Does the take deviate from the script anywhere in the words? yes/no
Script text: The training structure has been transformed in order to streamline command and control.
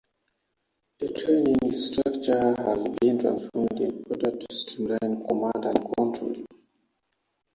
no